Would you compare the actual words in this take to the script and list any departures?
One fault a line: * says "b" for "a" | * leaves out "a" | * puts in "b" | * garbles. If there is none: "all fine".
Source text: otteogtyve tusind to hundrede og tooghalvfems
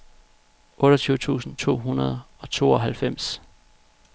all fine